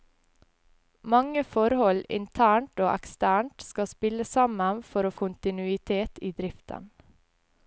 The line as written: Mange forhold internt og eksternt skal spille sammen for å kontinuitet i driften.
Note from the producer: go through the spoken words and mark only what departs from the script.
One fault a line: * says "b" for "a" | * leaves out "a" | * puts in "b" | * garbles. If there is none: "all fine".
all fine